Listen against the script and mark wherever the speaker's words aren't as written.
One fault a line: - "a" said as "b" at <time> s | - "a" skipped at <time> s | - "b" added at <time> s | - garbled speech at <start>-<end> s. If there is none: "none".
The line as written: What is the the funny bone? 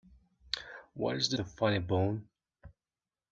none